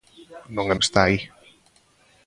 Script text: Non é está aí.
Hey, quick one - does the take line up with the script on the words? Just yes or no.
yes